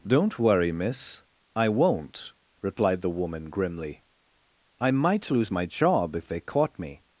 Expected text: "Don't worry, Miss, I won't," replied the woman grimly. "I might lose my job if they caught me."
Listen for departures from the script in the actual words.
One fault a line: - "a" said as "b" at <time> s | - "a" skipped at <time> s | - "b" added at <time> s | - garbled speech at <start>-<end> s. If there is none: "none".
none